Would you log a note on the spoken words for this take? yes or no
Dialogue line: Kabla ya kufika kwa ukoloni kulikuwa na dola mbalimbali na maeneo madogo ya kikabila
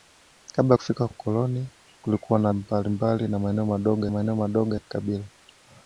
yes